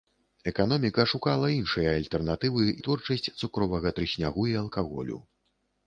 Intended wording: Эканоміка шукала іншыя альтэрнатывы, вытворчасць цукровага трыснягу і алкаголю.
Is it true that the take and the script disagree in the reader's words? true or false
false